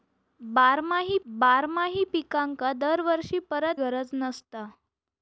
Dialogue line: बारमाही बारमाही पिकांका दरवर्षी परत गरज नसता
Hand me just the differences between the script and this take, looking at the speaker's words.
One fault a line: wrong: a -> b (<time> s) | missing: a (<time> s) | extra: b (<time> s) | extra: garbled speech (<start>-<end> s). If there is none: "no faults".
no faults